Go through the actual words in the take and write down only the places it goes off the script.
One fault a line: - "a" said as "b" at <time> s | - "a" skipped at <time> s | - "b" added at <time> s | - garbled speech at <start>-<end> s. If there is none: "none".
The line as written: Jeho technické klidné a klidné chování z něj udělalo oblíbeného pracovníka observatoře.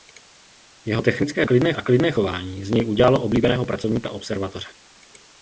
none